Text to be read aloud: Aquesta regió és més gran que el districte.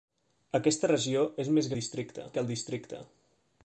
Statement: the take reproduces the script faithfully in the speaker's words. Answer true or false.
false